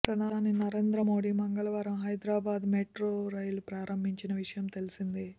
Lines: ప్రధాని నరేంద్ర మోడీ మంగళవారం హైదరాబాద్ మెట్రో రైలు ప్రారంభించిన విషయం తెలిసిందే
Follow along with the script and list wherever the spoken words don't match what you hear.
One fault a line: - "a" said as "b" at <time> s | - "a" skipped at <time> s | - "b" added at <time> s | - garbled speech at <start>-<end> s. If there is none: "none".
none